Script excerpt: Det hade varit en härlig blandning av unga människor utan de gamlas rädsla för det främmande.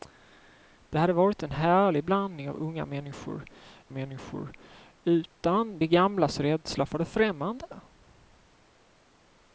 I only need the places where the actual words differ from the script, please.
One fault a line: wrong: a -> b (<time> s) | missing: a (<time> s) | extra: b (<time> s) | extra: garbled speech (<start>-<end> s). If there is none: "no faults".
extra: människor (3.9 s)